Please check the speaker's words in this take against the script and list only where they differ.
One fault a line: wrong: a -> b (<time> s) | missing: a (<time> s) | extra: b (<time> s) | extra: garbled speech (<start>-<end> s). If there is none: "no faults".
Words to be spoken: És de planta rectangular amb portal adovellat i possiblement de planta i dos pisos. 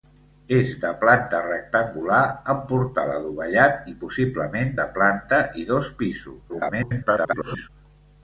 extra: garbled speech (6.5-7.7 s)